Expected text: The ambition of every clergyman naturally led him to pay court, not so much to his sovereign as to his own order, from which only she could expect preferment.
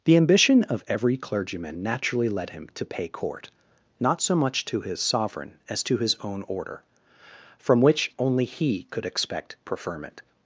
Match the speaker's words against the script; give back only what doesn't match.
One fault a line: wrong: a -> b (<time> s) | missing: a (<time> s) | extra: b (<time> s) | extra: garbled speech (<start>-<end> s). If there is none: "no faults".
wrong: she -> he (8.4 s)